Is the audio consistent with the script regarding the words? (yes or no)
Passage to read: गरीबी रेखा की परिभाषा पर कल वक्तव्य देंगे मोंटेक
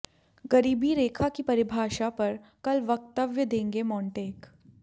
yes